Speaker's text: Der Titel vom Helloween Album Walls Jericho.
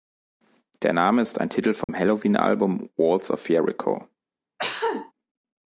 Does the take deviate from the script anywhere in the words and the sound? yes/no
yes